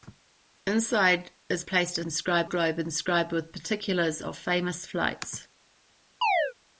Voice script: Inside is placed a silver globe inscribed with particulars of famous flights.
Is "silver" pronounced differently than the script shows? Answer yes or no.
yes